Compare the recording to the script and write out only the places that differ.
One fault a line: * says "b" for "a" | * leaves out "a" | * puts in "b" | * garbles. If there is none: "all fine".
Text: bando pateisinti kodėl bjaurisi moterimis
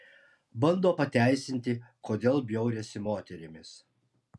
all fine